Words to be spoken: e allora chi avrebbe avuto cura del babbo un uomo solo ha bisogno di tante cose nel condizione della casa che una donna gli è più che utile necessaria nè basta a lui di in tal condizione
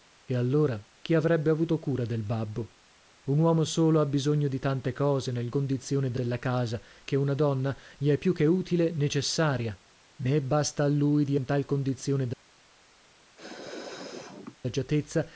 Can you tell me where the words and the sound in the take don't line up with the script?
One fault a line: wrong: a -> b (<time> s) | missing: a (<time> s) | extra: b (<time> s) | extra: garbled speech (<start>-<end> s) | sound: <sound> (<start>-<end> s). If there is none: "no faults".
sound: sneeze (13.4-14.6 s)